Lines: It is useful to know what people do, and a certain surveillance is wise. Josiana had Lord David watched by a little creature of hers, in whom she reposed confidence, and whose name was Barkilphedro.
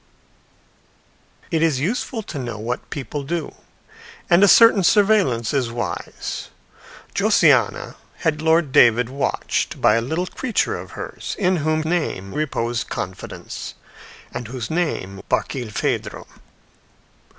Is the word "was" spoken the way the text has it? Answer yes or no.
no